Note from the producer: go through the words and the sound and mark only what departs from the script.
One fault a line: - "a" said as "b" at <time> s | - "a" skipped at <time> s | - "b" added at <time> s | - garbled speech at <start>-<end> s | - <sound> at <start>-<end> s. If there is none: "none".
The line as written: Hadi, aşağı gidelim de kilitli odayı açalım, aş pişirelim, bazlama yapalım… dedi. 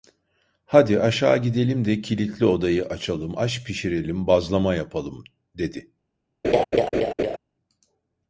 - laugh at 6.4-7.4 s